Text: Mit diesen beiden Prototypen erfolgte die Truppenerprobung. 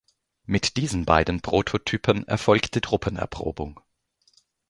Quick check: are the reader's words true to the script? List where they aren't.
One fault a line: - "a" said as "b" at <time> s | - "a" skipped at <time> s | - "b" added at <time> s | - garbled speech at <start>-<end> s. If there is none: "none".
- "die" skipped at 2.8 s